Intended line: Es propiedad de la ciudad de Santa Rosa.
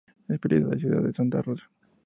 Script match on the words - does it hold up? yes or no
yes